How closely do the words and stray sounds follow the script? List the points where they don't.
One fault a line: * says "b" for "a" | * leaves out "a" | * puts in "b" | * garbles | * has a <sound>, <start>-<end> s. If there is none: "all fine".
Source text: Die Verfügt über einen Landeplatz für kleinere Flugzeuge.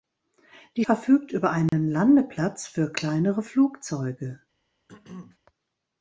* has a dropout, 1.7-1.7 s
* has a throat clearing, 4.9-5.4 s